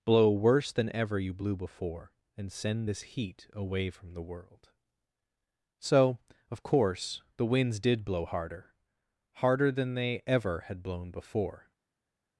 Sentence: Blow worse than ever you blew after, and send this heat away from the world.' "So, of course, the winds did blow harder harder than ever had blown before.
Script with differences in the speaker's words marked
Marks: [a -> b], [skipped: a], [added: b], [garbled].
Blow worse than ever you blew [after, -> before] and send this heat away from the world.' "So, of course, the winds did blow harder harder than [added: they] ever had blown before.